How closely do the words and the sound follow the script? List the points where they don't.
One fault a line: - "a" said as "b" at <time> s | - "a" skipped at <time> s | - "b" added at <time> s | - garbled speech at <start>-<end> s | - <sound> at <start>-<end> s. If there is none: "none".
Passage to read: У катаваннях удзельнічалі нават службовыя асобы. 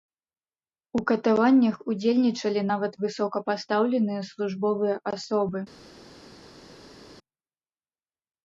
- "высокапастаўленыя" added at 3.1 s